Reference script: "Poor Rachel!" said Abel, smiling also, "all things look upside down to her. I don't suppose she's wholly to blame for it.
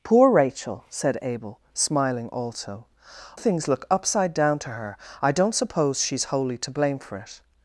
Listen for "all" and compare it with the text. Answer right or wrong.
wrong